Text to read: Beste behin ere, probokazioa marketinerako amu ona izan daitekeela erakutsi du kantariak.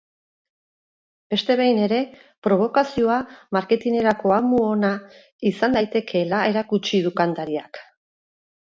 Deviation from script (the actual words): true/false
false